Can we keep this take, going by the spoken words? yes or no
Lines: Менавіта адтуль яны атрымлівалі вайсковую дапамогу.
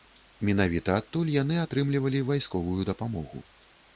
yes